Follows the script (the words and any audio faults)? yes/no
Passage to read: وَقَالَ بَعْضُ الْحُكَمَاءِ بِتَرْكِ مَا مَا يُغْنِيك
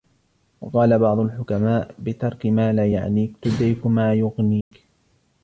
no